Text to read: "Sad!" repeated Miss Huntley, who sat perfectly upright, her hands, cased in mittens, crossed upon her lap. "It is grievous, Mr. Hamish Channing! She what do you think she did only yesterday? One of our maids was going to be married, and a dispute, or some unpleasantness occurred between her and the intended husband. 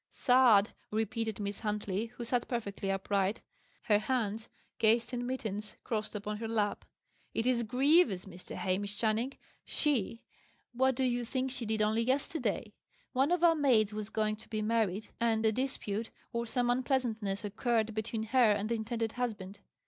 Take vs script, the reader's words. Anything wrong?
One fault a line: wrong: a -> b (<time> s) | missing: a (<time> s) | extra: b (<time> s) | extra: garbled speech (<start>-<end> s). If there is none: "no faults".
no faults